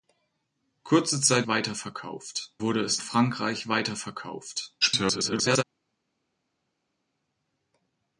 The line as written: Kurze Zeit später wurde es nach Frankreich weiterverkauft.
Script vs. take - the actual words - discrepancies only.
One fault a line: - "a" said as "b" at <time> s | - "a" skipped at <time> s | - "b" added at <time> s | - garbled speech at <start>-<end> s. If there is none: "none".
- "später" said as "weiterverkauft" at 1.5 s
- "nach" skipped at 3.0 s
- garbled speech at 4.8-5.6 s